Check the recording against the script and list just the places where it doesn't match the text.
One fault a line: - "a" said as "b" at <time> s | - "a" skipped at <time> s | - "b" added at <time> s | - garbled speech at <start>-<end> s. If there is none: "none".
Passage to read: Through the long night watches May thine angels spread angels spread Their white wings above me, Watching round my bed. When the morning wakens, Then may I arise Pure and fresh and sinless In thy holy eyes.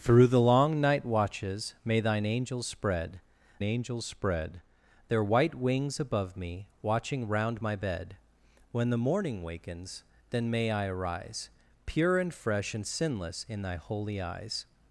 none